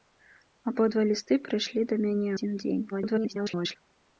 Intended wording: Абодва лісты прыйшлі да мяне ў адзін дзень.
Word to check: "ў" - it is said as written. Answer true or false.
false